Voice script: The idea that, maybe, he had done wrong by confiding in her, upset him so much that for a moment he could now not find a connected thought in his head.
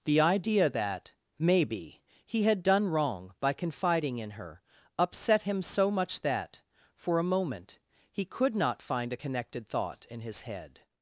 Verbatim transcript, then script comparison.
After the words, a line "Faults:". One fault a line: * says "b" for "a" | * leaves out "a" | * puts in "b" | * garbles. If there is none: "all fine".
The idea that, maybe, he had done wrong by confiding in her, upset him so much that for a moment he could not find a connected thought in his head.
Faults:
* leaves out "now"